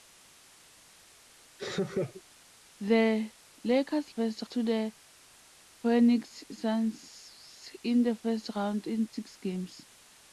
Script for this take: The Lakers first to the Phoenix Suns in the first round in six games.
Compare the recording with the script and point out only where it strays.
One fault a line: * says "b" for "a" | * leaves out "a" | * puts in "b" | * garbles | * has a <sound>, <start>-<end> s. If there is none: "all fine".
* has a laugh, 1.6-2.2 s